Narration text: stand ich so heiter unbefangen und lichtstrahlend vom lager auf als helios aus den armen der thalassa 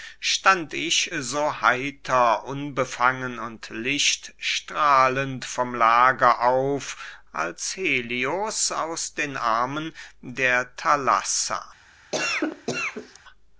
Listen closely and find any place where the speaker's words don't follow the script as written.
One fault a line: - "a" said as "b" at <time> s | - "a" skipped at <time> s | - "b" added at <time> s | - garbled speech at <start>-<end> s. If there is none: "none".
none